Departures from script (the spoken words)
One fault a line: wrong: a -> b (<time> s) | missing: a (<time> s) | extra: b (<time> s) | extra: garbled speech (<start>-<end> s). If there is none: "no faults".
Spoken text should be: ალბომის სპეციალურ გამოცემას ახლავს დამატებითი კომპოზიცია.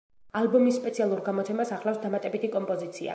no faults